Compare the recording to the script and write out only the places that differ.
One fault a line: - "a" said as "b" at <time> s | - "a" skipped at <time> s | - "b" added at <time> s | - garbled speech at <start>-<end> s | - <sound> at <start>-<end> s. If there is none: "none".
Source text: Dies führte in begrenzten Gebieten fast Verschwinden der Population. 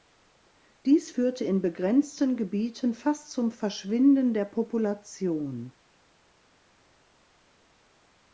- "zum" added at 3.3 s